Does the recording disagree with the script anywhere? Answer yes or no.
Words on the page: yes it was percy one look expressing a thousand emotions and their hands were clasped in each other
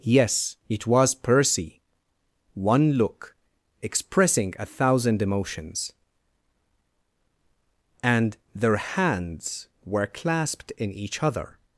no